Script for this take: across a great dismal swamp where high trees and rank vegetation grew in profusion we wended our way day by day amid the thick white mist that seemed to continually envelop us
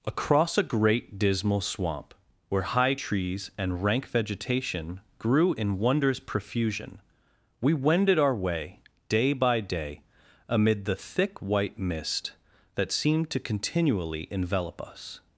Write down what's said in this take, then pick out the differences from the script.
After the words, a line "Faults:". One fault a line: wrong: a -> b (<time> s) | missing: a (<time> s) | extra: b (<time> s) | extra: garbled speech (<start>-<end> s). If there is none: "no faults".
across a great dismal swamp where high trees and rank vegetation grew in wondrous profusion we wended our way day by day amid the thick white mist that seemed to continually envelop us
Faults:
extra: wondrous (5.8 s)